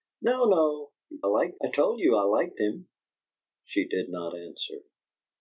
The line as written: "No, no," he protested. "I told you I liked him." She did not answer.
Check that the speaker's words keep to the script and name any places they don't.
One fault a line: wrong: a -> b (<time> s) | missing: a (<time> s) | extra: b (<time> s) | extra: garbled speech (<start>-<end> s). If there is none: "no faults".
wrong: protested -> liked (1.2 s)